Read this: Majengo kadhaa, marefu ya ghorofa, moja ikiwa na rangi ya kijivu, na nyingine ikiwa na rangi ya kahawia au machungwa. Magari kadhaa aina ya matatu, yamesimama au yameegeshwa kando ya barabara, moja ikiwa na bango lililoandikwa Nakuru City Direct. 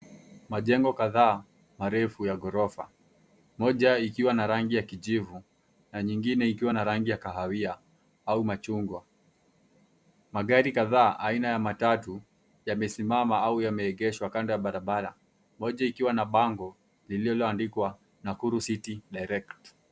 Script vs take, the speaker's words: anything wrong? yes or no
no